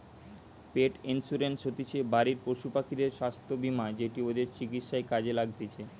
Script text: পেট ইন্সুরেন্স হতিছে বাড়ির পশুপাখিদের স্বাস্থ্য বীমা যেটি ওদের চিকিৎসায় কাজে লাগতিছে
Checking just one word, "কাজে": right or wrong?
right